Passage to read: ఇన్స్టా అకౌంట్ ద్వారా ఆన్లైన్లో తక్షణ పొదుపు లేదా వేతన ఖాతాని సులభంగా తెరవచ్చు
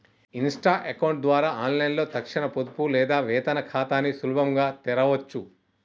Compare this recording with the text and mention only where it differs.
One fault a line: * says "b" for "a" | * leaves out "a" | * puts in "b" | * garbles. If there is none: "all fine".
all fine